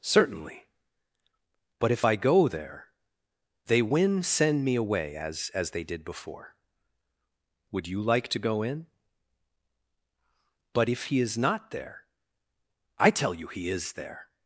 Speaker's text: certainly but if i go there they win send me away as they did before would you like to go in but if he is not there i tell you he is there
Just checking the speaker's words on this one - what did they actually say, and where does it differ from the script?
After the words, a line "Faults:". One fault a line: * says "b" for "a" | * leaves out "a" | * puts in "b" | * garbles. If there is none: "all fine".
certainly but if i go there they win send me away as as they did before would you like to go in but if he is not there i tell you he is there
Faults:
* puts in "as"